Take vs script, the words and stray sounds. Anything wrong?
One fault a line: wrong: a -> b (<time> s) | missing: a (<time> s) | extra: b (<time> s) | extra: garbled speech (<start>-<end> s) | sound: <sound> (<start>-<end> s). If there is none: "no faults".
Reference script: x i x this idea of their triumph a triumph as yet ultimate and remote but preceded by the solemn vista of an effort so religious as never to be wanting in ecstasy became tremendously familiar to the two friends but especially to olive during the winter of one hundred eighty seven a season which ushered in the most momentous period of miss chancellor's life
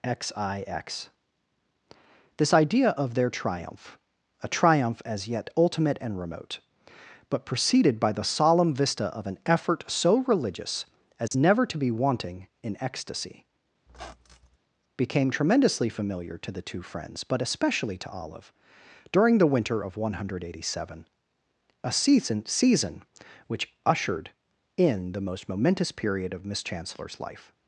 sound: dropout (11.3-11.3 s)
sound: squeak (13.9-14.6 s)
extra: season (22.5 s)